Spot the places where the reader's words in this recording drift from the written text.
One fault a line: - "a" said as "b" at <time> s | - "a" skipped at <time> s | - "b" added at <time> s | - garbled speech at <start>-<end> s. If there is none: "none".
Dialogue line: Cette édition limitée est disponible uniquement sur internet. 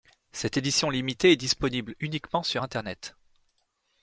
none